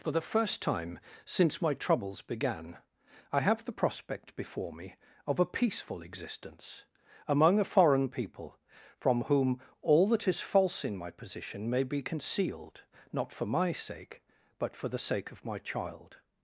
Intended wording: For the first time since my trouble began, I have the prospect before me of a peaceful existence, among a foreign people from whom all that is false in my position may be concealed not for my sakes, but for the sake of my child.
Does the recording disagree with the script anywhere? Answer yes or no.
yes